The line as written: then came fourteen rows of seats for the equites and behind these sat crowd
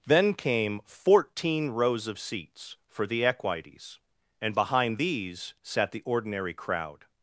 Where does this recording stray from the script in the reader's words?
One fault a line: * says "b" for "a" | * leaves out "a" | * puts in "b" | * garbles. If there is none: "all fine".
* puts in "the ordinary"